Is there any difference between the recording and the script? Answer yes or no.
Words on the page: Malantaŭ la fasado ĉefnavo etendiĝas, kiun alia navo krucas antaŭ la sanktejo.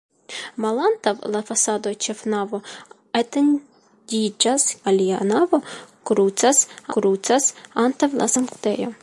yes